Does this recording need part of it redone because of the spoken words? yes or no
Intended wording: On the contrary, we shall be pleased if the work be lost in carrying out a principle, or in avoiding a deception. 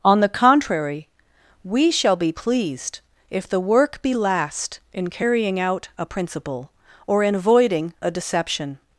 yes